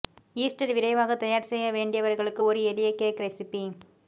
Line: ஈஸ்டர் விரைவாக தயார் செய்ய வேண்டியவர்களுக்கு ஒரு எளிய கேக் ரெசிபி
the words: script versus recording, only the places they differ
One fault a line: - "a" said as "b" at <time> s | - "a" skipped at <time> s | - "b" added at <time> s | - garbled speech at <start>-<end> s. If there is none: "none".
none